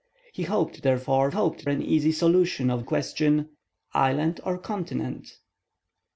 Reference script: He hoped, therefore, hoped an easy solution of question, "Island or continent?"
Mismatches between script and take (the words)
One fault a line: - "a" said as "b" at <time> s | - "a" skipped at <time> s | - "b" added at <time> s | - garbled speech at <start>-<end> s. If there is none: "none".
none